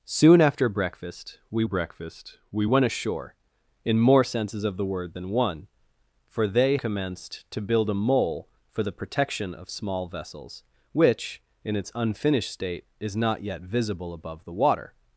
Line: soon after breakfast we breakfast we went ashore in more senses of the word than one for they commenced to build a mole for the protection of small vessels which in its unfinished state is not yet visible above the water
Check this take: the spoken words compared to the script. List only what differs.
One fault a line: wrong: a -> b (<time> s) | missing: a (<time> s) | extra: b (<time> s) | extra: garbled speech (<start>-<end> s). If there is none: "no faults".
no faults